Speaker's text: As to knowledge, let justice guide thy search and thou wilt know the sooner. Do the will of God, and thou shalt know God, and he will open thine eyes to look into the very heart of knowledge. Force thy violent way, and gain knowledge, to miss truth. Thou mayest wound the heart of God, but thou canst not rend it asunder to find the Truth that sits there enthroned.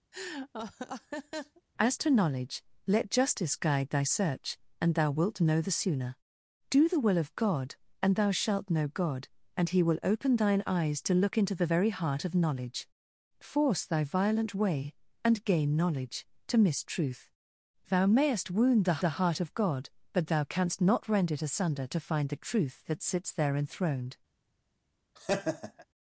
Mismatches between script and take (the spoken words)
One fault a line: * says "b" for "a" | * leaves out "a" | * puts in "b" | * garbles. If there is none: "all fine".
* puts in "the"